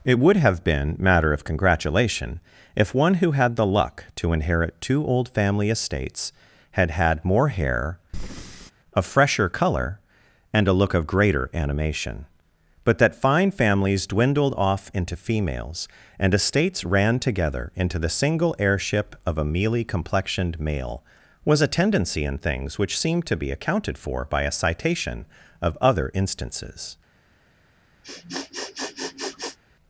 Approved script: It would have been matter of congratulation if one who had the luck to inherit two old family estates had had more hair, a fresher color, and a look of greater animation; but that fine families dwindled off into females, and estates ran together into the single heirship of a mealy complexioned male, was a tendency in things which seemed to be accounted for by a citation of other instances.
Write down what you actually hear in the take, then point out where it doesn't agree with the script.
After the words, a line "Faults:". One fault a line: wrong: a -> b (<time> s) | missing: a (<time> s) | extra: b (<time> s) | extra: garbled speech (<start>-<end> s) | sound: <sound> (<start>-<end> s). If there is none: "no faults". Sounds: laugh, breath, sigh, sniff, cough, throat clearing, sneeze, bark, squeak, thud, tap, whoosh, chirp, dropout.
It would have been matter of congratulation if one who had the luck to inherit two old family estates had had more hair, a fresher color, and a look of greater animation; but that fine families dwindled off into females, and estates ran together into the single heirship of a mealy complexioned male, was a tendency in things which seemed to be accounted for by a citation of other instances.
Faults:
sound: breath (8.1-8.7 s)
sound: sniff (28.0-29.6 s)